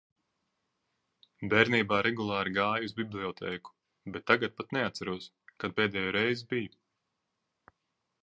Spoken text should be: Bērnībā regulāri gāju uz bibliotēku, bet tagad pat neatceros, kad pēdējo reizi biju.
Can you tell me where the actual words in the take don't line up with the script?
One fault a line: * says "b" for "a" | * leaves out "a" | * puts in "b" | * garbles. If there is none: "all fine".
all fine